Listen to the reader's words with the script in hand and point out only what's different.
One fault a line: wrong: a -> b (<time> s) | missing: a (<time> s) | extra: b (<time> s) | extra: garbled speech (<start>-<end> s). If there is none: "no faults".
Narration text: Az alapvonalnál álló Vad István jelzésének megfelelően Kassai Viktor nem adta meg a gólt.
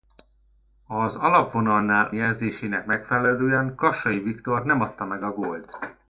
missing: álló Vad István (2.1 s)